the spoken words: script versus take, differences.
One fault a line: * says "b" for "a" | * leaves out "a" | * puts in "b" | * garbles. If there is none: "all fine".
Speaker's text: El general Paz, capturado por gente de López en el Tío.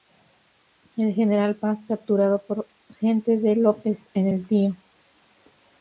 all fine